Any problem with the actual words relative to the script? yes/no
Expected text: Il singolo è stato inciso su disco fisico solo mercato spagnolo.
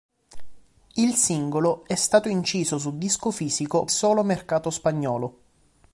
no